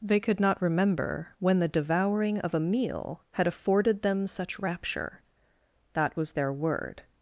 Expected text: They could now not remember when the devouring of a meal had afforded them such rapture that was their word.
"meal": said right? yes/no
yes